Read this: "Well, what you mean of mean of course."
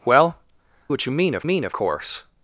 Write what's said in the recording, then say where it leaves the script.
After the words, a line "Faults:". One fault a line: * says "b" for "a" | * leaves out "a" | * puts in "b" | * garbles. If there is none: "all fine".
"Well, what you mean of mean of course."
Faults:
all fine